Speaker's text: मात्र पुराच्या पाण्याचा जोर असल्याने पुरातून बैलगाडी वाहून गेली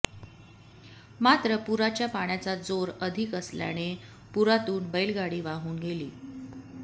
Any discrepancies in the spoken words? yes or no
yes